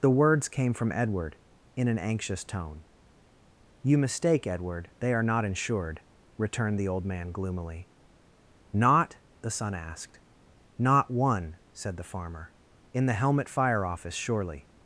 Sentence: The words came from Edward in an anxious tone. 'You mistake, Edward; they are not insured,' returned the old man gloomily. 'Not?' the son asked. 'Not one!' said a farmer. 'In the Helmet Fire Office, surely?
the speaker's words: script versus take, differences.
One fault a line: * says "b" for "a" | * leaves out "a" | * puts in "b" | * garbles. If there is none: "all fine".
* says "the" for "a"